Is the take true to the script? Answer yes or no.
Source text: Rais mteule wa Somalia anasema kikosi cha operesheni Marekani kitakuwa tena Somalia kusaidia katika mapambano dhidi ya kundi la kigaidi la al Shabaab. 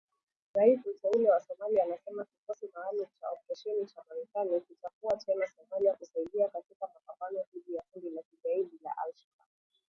no